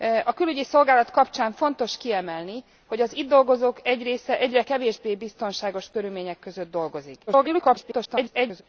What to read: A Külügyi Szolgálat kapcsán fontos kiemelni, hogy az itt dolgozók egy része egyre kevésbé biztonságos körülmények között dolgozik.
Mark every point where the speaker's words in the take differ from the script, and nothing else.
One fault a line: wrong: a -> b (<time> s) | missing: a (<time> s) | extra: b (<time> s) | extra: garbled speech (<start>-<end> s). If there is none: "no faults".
extra: garbled speech (7.3-8.6 s)